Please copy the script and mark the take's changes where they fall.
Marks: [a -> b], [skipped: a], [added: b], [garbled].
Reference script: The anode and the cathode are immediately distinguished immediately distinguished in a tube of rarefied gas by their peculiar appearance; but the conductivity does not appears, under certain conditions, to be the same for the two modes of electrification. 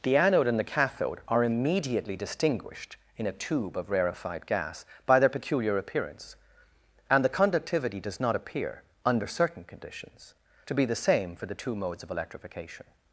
The anode and the cathode are immediately distinguished [skipped: immediately distinguished] in a tube of rarefied gas by their peculiar appearance; [but -> and] the conductivity does not [appears, -> appear] under certain conditions, to be the same for the two modes of electrification.